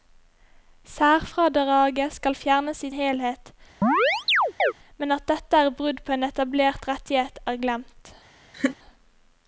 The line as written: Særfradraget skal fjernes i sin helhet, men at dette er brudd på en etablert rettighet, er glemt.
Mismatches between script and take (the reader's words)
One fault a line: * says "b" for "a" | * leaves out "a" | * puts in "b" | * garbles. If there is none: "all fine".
* leaves out "sin"